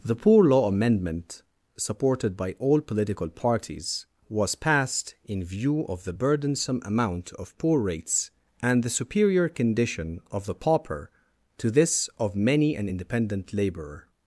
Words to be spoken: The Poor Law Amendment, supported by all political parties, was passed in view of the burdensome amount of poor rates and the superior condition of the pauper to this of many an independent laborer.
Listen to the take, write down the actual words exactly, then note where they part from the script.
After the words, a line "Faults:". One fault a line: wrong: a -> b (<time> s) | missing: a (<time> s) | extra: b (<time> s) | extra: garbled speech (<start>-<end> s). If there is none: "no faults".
The Poor Law Amendment, supported by all political parties, was passed in view of the burdensome amount of poor rates and the superior condition of the pauper to this of many an independent laborer.
Faults:
no faults